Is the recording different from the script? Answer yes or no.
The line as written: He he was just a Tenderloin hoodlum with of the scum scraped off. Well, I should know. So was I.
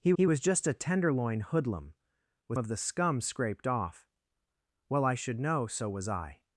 no